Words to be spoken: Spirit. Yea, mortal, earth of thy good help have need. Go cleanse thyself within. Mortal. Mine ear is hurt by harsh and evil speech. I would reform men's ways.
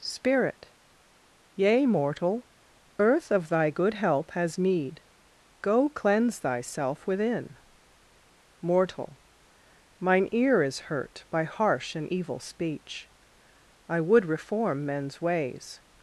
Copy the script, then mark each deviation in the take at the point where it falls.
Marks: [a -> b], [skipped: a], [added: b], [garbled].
Spirit. Yea, mortal, earth of thy good help [have -> has] need. Go cleanse thyself within. Mortal. Mine ear is hurt by harsh and evil speech. I would reform men's ways.